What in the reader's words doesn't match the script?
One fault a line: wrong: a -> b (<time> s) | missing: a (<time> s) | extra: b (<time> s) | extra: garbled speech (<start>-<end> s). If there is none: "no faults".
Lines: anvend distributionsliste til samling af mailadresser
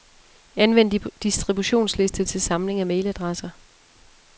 no faults